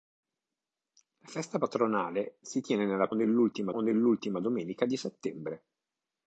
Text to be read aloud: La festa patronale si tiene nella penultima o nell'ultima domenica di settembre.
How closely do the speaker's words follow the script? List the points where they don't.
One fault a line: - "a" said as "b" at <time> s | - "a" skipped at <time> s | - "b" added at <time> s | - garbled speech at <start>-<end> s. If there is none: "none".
- "penultima" said as "nell'ultima" at 3.1 s